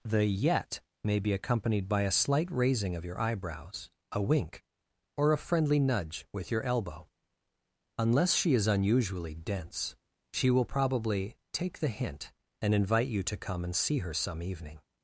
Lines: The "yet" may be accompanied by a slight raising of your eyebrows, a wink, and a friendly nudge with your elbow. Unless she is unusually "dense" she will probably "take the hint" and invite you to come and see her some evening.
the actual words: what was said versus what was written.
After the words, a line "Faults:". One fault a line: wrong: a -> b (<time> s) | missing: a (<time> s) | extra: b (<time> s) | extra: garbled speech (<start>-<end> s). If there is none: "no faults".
The "yet" may be accompanied by a slight raising of your eyebrows, a wink, or a friendly nudge with your elbow. Unless she is unusually "dense" she will probably "take the hint" and invite you to come and see her some evening.
Faults:
wrong: and -> or (5.2 s)